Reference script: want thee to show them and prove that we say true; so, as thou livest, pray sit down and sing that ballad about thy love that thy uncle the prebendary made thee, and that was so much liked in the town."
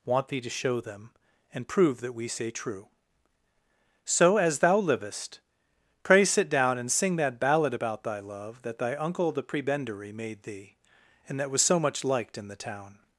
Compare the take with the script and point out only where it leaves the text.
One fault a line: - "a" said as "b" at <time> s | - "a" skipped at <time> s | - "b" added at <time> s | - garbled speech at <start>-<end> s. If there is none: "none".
none